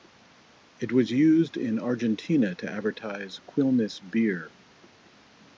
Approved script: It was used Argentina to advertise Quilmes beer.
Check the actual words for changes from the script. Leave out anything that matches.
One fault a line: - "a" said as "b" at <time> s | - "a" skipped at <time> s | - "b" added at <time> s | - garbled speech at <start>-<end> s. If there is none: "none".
- "in" added at 1.6 s